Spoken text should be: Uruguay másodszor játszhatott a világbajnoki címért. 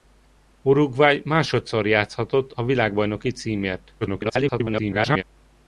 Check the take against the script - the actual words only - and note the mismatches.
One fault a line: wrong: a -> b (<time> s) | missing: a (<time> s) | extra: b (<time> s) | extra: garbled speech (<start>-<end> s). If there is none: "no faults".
extra: garbled speech (4.0-5.2 s)